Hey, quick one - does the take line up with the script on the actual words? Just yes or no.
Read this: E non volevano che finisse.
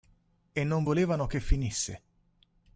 yes